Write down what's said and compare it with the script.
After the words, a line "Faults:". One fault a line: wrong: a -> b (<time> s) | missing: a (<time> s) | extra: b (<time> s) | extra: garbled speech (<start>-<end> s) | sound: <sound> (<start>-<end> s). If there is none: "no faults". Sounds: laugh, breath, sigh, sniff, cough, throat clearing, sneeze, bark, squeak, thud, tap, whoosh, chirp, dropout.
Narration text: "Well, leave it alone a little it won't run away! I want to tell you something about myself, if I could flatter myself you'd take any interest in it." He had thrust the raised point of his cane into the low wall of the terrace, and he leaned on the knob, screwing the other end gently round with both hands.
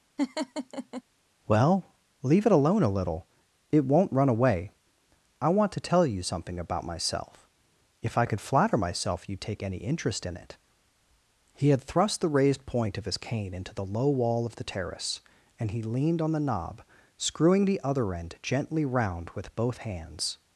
"Well, leave it alone a little it won't run away! I want to tell you something about myself, if I could flatter myself you'd take any interest in it." He had thrust the raised point of his cane into the low wall of the terrace, and he leaned on the knob, screwing the other end gently round with both hands.
Faults:
sound: laugh (0.2-1.0 s)